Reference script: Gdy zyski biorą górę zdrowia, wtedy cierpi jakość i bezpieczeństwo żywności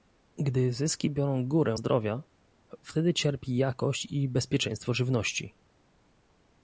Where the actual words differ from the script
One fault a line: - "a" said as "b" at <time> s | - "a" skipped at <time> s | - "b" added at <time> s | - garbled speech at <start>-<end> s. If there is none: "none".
none